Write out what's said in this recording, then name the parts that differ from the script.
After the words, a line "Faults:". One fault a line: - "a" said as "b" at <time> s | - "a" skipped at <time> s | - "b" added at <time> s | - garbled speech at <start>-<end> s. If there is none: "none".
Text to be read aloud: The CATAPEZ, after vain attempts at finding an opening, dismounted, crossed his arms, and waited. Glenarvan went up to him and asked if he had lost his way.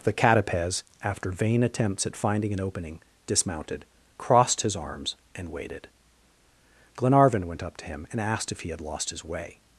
The CATAPEZ, after vain attempts at finding an opening, dismounted, crossed his arms, and waited. Glenarvan went up to him and asked if he had lost his way.
Faults:
none